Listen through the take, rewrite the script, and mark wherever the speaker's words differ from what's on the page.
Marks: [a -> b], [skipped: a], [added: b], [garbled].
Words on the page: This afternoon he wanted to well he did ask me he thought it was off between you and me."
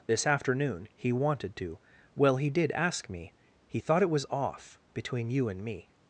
This afternoon he wanted to well he did ask me he thought it was off between you and me."